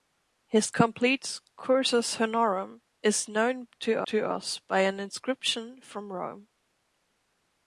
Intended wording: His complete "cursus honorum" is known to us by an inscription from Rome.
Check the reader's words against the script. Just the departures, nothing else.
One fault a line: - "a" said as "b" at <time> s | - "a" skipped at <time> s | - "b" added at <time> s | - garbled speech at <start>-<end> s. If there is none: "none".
- "to" added at 4.1 s